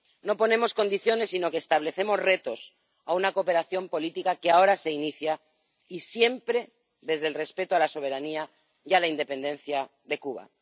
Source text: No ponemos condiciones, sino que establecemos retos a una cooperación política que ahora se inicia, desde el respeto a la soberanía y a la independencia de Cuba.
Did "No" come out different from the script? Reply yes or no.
no